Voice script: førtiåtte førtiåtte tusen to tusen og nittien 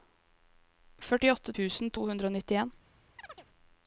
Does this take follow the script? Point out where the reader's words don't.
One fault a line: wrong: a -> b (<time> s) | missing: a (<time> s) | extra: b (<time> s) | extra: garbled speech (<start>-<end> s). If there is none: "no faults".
missing: førtiåtte (1.6 s)
wrong: tusen -> hundre (2.1 s)